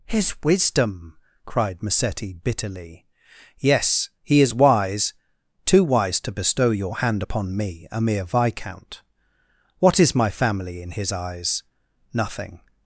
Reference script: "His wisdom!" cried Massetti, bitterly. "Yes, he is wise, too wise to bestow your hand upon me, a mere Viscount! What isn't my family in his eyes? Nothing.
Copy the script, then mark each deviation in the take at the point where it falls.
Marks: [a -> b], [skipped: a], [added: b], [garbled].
"His wisdom!" cried Massetti, bitterly. "Yes, he is wise, too wise to bestow your hand upon me, a mere Viscount! What [isn't -> is] my family in his eyes? Nothing.